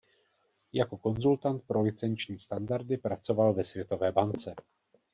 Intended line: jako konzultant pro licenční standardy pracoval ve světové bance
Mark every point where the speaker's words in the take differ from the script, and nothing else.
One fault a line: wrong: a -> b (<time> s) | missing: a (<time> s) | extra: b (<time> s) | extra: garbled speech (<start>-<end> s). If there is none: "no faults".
no faults